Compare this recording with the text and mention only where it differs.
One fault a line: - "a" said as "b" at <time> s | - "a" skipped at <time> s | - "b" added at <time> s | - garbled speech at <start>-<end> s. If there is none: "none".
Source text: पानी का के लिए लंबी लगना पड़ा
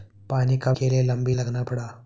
none